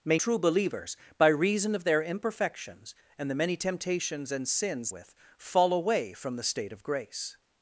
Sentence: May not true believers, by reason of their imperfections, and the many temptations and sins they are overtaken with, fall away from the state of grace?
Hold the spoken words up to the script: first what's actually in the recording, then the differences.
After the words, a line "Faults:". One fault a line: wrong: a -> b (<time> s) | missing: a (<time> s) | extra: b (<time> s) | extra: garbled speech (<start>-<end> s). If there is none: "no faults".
May true believers, by reason of their imperfections, and the many temptations and sins with, fall away from the state of grace?
Faults:
missing: not (0.2 s)
missing: they are overtaken (4.9 s)